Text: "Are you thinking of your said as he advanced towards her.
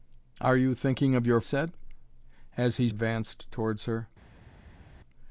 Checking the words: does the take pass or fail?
pass